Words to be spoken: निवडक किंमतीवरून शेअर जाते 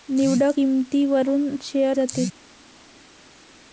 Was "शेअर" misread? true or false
false